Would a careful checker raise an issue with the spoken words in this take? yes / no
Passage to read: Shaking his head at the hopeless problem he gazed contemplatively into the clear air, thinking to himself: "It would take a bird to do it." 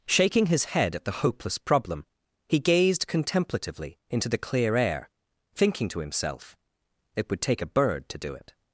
no